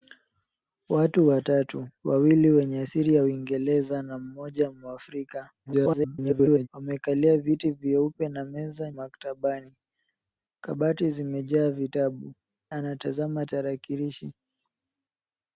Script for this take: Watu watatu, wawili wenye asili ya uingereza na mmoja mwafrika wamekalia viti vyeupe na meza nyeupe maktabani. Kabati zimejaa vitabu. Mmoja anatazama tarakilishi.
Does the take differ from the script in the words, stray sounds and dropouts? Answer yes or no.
yes